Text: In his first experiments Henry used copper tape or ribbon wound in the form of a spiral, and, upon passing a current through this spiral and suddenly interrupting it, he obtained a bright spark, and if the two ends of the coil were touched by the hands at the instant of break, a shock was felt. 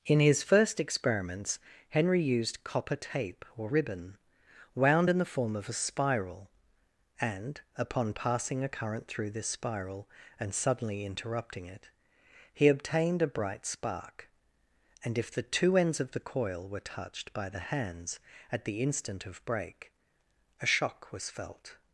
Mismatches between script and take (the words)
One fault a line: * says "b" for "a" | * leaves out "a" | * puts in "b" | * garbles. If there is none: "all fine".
all fine